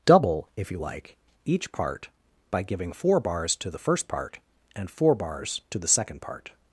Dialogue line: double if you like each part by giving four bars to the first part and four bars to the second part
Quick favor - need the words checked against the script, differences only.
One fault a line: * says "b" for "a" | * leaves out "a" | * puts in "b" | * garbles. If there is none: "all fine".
all fine